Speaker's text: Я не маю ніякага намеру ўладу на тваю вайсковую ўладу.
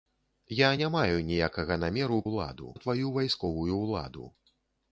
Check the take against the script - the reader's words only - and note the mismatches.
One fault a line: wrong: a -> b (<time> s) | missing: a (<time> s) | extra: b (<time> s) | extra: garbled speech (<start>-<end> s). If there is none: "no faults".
no faults